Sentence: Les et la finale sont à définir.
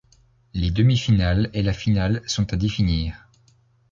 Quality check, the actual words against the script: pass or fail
fail